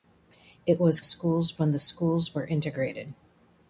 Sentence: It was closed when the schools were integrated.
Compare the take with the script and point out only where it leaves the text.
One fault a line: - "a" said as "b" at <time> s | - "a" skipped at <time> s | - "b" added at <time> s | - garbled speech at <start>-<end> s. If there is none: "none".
- "closed" said as "schools" at 1.0 s